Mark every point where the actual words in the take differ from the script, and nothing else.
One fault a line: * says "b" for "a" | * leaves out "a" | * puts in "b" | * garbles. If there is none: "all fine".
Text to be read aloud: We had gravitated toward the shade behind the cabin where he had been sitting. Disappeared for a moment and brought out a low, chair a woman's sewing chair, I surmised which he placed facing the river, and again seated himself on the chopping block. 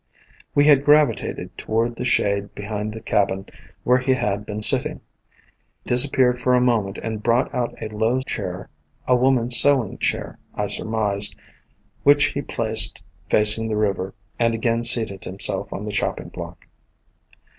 all fine